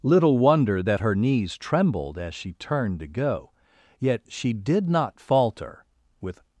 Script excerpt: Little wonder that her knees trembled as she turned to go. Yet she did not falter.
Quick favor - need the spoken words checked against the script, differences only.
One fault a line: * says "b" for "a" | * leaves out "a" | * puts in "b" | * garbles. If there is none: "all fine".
* puts in "With"